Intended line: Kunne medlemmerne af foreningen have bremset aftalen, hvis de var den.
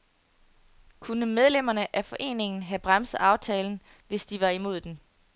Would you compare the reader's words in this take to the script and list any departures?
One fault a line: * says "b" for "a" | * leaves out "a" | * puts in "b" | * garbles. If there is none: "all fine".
* puts in "imod"